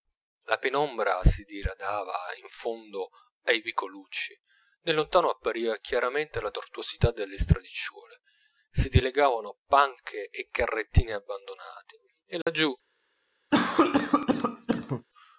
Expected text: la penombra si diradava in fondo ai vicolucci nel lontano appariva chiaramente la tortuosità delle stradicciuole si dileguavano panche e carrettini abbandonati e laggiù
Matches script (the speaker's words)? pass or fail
pass